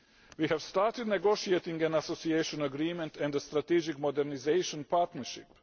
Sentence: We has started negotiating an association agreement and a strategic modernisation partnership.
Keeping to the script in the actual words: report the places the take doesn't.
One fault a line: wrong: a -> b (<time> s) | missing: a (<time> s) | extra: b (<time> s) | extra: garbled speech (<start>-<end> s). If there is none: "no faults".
wrong: has -> have (0.4 s)